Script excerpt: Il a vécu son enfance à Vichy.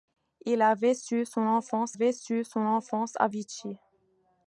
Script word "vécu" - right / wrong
right